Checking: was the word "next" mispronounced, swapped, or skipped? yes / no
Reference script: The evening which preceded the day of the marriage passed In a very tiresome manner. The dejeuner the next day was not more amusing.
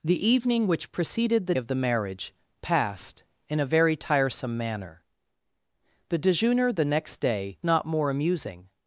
no